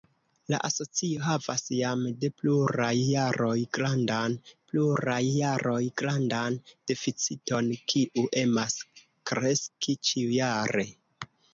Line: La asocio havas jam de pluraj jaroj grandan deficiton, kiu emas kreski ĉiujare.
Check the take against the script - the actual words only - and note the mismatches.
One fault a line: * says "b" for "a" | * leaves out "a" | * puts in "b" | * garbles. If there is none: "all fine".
* puts in "pluraj jaroj grandan"